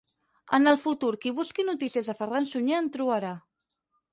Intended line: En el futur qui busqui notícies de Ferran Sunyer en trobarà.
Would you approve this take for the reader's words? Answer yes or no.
yes